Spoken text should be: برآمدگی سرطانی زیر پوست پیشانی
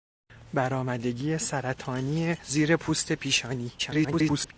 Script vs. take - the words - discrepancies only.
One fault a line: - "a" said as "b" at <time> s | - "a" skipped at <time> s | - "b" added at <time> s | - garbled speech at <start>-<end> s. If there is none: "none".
- garbled speech at 3.8-4.5 s